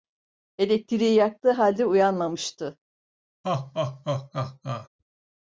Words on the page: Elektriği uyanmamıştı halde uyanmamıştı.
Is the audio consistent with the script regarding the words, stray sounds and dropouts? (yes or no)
no